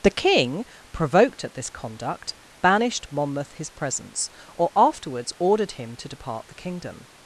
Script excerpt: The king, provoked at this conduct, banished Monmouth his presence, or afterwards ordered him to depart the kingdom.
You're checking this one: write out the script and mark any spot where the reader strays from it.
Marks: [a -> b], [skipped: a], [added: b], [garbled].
The king, provoked at this conduct, banished Monmouth his presence, or afterwards ordered him to depart the kingdom.